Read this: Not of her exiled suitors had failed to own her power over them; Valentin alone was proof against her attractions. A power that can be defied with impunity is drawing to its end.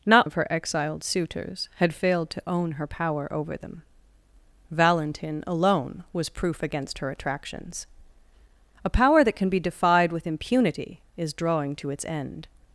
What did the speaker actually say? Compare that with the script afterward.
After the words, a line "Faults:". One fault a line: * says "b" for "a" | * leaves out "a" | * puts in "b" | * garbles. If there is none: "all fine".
Not of her exiled suitors had failed to own her power over them; Valentin alone was proof against her attractions. A power that can be defied with impunity is drawing to its end.
Faults:
all fine